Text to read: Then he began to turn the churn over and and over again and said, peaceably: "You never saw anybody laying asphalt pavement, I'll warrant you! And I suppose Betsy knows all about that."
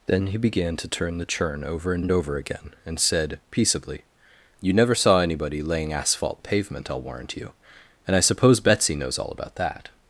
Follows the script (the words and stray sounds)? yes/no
yes